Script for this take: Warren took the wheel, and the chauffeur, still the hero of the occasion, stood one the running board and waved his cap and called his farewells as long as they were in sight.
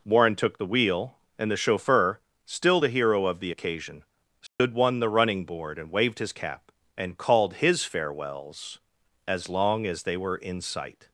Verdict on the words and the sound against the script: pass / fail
fail